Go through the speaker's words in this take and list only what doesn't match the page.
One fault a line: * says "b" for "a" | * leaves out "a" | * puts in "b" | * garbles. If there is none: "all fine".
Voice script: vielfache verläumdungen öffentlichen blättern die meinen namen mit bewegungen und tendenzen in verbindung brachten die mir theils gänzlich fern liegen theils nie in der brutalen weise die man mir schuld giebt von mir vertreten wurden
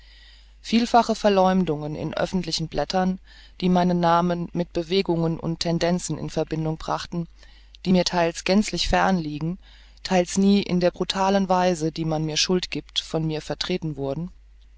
* puts in "in"